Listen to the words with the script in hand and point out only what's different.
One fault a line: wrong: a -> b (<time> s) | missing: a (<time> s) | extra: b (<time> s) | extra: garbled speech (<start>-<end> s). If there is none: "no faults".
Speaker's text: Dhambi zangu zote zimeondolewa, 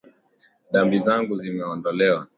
missing: zote (1.4 s)